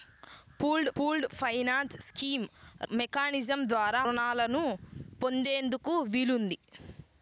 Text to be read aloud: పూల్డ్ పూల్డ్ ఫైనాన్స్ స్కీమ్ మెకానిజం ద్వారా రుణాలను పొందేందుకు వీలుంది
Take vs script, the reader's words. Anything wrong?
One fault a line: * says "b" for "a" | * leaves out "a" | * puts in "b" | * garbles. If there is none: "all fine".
all fine